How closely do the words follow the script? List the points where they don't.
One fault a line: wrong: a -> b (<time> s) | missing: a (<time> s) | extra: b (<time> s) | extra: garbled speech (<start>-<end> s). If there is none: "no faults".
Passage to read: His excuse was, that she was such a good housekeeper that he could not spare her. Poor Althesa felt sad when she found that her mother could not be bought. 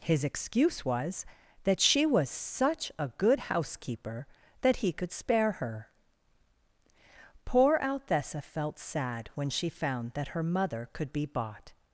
missing: not (5.1 s)
missing: not (11.1 s)